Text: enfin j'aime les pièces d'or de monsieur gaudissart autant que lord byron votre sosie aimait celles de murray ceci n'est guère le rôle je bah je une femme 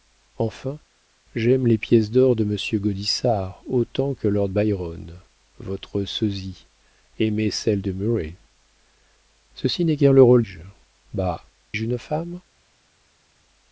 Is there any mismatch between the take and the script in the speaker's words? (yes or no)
no